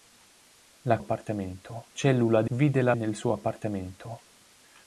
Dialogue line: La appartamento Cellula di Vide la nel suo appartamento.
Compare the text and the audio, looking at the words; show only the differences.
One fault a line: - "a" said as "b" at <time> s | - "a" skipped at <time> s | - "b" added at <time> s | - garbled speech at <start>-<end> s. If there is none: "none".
none